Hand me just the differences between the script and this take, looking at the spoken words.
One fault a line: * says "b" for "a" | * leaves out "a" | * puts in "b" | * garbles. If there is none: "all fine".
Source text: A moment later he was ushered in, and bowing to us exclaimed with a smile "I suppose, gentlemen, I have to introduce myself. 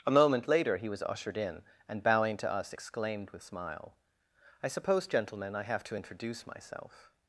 * leaves out "a"